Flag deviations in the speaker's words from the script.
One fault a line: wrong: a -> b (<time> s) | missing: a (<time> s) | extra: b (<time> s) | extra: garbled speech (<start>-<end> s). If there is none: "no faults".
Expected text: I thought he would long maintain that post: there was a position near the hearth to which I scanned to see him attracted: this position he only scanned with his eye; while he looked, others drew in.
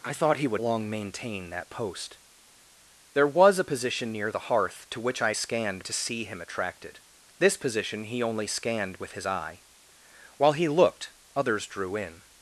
no faults